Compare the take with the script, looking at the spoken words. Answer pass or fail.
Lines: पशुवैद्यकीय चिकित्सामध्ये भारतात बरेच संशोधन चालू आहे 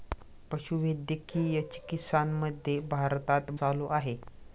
fail